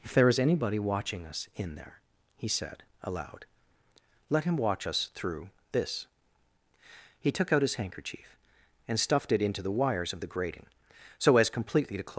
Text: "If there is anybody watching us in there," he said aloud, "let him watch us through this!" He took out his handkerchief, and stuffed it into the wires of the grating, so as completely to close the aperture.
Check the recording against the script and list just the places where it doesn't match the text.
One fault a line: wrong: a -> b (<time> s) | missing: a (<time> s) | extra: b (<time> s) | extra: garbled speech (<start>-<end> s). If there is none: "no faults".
missing: the aperture (12.1 s)